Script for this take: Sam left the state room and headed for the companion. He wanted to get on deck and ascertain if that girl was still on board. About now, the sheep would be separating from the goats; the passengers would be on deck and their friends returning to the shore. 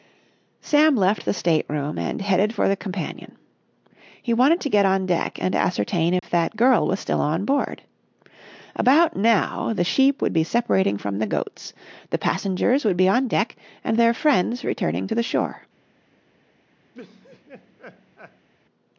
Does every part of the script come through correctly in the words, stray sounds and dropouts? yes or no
no